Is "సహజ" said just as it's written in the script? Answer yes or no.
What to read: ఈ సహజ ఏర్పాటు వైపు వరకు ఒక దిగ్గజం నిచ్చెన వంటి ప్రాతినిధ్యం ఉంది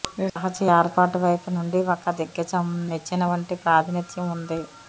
yes